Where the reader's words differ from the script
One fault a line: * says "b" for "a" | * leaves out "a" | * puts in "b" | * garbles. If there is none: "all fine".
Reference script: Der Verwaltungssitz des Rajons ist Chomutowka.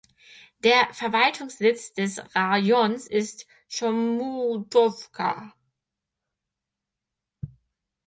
all fine